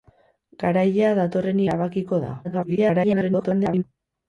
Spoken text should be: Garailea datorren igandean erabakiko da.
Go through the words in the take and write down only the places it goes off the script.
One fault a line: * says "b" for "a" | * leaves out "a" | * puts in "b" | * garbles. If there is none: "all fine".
* leaves out "igandean"
* garbles